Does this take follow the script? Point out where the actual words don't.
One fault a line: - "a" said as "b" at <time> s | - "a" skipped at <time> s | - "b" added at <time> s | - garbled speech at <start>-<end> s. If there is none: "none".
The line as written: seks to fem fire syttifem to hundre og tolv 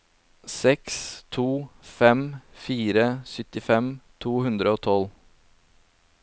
none